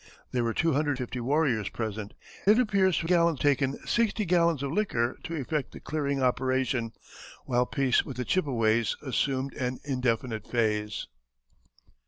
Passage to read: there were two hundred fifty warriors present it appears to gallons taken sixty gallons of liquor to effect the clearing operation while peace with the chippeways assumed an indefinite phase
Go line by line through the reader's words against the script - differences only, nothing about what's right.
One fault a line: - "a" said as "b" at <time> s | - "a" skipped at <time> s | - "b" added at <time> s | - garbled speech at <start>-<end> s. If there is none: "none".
none